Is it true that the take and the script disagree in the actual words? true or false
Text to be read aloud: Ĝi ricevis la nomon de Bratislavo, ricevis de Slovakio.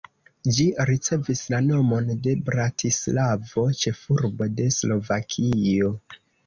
true